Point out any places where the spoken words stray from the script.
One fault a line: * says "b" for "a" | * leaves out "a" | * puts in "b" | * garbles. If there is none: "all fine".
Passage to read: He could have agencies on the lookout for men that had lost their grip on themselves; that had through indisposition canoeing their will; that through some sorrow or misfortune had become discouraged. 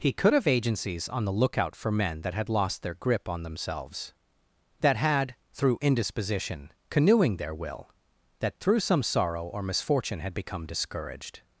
all fine